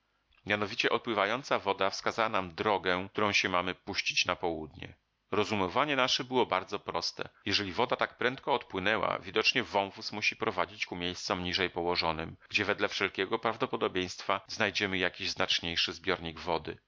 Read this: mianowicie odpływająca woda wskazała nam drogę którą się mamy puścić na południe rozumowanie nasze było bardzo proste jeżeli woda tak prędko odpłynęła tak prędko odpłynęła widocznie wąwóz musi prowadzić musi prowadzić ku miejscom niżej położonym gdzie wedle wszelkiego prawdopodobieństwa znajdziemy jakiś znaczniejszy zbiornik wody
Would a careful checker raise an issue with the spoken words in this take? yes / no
yes